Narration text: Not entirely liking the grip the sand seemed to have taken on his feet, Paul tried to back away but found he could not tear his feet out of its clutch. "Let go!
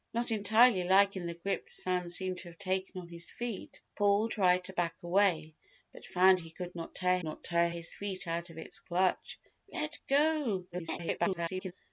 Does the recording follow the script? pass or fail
fail